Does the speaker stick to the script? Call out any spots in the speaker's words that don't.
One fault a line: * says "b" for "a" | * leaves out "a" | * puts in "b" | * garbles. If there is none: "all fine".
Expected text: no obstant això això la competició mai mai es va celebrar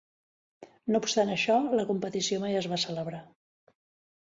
* leaves out "això"
* leaves out "mai"